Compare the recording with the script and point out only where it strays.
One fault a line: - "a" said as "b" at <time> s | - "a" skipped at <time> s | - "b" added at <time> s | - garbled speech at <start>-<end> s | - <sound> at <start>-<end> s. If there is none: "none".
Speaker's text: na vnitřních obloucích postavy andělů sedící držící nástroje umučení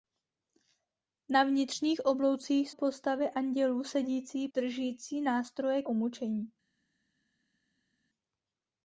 none